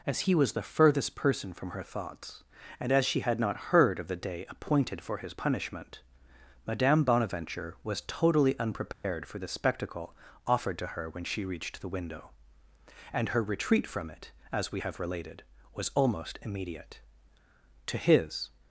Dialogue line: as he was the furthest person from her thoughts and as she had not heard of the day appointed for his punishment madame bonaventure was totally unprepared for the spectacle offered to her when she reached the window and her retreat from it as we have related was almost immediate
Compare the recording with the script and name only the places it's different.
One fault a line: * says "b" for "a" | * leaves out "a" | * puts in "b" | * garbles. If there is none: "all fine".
* puts in "to his"